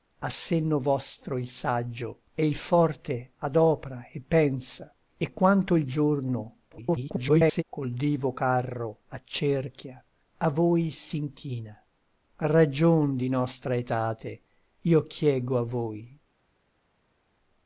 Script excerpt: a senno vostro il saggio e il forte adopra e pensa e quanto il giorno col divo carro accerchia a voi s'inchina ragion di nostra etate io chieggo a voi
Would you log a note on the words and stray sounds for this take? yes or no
yes